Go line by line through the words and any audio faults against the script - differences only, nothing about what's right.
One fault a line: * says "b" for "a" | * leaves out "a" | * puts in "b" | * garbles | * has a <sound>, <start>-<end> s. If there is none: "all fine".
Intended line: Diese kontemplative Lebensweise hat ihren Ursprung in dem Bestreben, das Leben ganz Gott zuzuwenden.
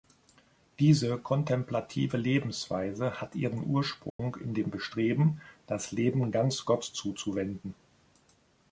* has a dropout, 4.1-4.2 s